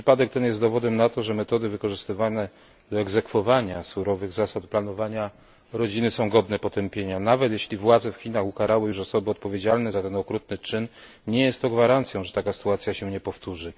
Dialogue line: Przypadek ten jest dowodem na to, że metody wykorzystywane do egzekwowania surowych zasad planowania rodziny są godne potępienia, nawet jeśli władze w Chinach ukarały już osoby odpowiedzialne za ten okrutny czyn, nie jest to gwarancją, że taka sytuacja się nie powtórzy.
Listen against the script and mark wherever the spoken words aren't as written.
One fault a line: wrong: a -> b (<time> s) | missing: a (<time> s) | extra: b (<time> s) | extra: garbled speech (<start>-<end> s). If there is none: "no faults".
no faults